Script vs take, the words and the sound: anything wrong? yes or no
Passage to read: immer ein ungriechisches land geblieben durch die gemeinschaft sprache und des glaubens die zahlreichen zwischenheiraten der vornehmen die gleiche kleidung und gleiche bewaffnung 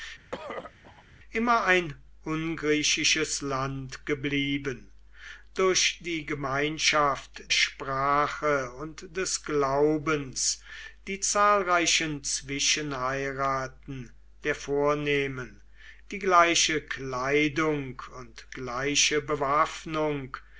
yes